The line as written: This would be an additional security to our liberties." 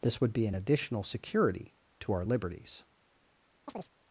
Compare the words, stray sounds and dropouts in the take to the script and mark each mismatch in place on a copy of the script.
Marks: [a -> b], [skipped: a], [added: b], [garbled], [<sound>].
This would be an additional security to our liberties." [chirp]